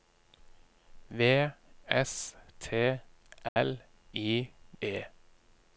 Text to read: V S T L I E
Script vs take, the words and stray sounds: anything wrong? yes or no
yes